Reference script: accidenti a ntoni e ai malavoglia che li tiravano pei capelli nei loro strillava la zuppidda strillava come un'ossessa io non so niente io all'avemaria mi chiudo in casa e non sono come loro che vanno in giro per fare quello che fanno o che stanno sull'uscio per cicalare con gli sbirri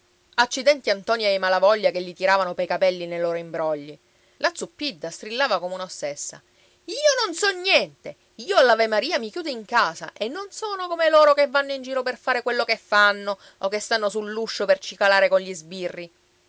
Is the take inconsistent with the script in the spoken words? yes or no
yes